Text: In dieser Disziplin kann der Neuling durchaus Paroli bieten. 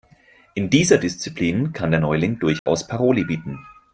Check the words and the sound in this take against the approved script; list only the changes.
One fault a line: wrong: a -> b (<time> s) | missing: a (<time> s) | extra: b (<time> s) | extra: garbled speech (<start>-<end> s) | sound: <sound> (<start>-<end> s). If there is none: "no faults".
sound: dropout (2.6-2.7 s)